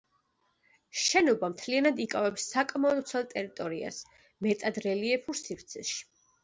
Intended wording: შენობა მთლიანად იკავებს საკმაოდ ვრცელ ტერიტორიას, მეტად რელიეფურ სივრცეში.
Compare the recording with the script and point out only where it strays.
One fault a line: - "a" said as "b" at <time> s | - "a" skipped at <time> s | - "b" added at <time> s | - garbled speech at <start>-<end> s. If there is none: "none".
none